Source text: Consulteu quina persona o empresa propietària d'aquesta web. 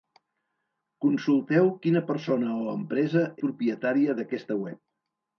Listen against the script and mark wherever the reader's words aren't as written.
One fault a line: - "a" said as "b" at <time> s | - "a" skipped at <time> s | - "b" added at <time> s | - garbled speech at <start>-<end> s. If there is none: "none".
none